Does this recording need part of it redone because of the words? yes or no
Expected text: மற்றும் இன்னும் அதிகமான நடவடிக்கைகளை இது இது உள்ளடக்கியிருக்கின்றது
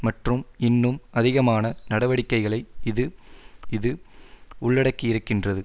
no